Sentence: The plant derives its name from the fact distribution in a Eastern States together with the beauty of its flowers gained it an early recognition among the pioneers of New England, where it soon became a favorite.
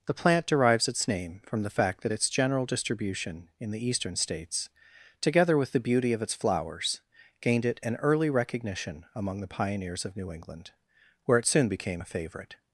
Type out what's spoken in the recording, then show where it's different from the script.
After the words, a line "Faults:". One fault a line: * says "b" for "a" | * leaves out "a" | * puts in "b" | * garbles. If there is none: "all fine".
The plant derives its name from the fact that its general distribution in the Eastern States together with the beauty of its flowers gained it an early recognition among the pioneers of New England, where it soon became a favorite.
Faults:
* puts in "that its general"
* says "the" for "a"